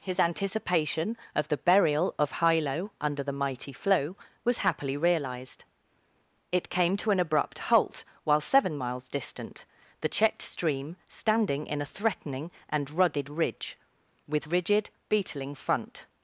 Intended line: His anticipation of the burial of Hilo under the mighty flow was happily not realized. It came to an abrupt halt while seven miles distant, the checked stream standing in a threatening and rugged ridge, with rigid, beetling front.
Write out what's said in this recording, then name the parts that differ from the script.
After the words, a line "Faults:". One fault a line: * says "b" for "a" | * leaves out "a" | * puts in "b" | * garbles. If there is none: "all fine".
His anticipation of the burial of Hilo under the mighty flow was happily realized. It came to an abrupt halt while seven miles distant, the checked stream standing in a threatening and rugged ridge, with rigid, beetling front.
Faults:
* leaves out "not"